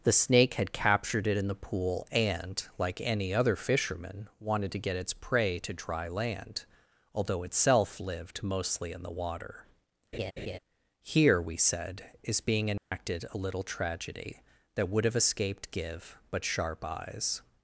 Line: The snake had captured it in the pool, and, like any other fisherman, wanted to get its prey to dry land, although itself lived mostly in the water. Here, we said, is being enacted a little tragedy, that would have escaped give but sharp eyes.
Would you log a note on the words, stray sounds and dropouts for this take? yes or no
yes